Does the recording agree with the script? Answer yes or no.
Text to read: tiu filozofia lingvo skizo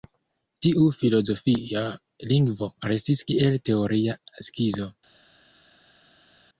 no